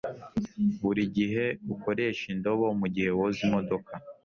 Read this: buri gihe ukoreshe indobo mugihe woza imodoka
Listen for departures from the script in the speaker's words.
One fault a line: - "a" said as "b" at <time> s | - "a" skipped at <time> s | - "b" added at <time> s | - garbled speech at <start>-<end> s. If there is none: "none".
none